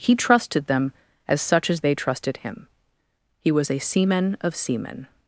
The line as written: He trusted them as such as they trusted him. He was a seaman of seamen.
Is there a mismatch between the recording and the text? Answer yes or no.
no